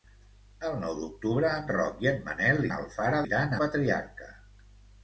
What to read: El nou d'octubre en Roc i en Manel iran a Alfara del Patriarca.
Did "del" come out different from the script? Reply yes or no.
yes